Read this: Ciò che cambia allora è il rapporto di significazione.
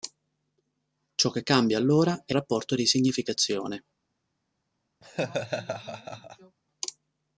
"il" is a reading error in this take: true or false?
true